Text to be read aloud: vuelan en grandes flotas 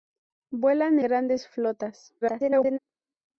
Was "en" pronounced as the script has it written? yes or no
no